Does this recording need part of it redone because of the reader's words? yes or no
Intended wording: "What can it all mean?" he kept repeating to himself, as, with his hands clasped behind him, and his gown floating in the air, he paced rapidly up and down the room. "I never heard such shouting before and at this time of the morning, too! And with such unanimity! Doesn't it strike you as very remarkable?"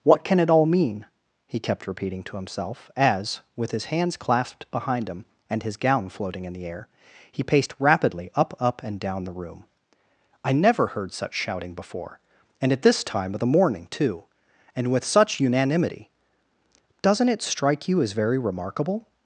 yes